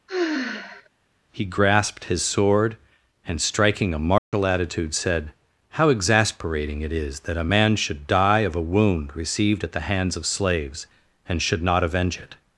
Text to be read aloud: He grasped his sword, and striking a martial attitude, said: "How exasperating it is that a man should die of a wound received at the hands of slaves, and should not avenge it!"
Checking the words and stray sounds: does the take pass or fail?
fail